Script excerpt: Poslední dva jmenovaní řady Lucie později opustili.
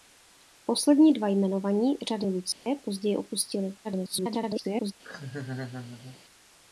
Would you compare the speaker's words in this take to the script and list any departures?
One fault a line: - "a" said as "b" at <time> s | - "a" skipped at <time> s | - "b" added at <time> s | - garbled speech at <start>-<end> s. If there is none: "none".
- garbled speech at 3.8-4.9 s